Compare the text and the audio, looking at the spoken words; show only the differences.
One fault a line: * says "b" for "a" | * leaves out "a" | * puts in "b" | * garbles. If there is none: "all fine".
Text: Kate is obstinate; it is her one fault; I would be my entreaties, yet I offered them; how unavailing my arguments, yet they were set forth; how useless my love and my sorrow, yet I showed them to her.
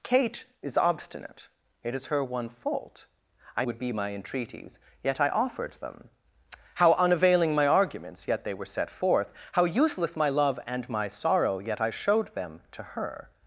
all fine